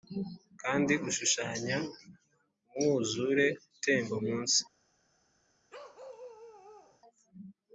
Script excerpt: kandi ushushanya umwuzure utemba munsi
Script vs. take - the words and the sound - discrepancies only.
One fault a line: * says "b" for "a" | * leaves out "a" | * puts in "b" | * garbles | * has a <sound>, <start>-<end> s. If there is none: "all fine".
* has a bark, 5.7-7.0 s